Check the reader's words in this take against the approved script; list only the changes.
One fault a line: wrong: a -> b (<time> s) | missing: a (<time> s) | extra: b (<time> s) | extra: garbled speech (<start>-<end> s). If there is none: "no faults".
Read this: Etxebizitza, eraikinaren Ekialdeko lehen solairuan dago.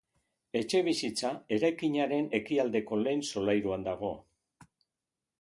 no faults